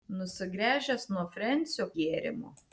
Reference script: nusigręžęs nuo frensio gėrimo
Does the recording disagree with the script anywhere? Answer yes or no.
no